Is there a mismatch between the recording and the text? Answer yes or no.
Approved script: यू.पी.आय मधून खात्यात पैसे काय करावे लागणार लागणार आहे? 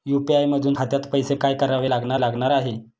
no